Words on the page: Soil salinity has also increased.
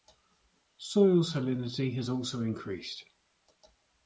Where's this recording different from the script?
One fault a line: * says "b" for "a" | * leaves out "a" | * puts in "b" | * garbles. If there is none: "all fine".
all fine